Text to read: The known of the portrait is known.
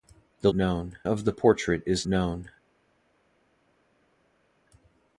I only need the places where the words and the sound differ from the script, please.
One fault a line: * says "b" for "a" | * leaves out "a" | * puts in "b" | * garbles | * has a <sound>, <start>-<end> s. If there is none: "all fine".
all fine